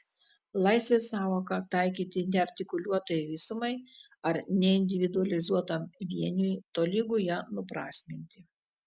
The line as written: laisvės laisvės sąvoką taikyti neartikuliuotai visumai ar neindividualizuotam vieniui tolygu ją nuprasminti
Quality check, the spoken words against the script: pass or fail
fail